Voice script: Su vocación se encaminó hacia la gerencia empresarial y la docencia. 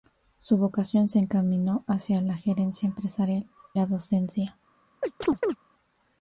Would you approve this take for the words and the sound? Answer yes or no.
no